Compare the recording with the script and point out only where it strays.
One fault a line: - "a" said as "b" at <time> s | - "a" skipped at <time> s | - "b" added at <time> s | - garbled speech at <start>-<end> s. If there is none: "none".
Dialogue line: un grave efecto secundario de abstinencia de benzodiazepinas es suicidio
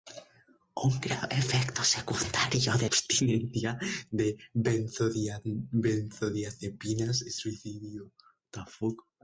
none